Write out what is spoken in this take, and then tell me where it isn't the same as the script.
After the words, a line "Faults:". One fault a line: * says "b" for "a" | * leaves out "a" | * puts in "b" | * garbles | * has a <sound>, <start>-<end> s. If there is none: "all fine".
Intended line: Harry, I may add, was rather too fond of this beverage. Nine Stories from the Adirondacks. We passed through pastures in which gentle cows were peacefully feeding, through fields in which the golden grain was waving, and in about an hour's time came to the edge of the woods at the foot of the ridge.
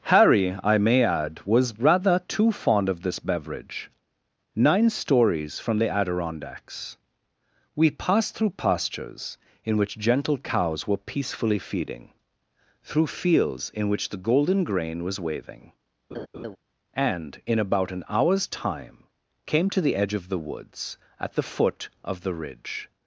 Harry, I may add, was rather too fond of this beverage. Nine Stories from the Adirondacks. We passed through pastures in which gentle cows were peacefully feeding, through fields in which the golden grain was waving, and in about an hour's time came to the edge of the woods at the foot of the ridge.
Faults:
* has a laugh, 16.1-16.6 s